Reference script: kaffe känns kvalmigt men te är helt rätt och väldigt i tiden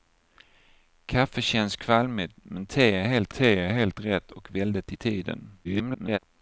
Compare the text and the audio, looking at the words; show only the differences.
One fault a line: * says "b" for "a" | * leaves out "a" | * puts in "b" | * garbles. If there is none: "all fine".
* puts in "te är helt"
* garbles